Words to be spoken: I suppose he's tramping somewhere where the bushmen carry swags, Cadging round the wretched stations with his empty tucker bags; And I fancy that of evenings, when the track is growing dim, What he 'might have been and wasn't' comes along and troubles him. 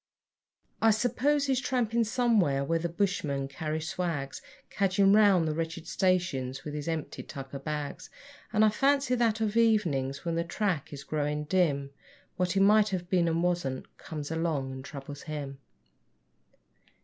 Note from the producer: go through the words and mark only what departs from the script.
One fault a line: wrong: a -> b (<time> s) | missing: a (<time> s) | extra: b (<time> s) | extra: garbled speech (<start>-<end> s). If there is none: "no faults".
no faults